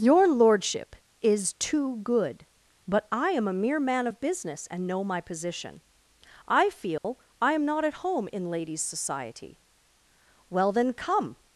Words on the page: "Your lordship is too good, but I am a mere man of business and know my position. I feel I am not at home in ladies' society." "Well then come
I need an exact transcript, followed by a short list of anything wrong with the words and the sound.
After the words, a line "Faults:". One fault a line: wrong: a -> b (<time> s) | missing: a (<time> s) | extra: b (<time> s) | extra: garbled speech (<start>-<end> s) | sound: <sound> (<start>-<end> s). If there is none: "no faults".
"Your lordship is too good, but I am a mere man of business and know my position. I feel I am not at home in ladies' society." "Well then come
Faults:
sound: dropout (7.0-7.0 s)